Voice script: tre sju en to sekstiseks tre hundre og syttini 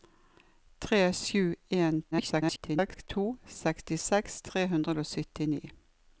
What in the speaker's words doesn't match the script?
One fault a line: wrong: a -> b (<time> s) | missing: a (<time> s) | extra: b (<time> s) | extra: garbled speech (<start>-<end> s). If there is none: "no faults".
extra: garbled speech (2.1-3.1 s)